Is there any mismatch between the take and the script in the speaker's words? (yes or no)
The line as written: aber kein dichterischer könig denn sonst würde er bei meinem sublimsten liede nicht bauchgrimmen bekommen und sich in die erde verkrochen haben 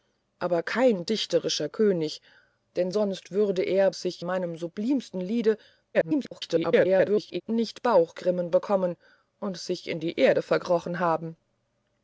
yes